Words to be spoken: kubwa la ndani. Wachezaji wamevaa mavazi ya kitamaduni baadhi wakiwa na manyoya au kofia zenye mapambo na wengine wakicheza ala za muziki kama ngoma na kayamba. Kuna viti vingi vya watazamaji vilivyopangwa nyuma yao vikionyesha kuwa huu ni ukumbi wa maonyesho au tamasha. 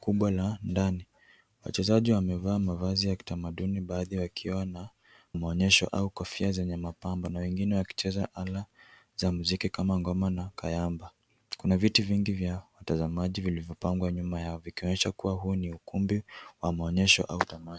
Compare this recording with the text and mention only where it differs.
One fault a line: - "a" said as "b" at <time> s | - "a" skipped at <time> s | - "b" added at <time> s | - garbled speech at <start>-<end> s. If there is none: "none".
- "manyoya" said as "maonyesho" at 5.3 s